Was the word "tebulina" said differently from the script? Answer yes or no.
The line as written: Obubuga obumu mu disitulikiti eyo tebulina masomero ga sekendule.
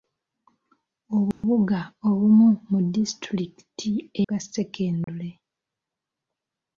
yes